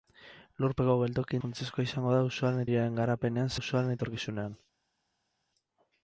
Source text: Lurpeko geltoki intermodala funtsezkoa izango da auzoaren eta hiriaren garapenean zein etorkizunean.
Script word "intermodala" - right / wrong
wrong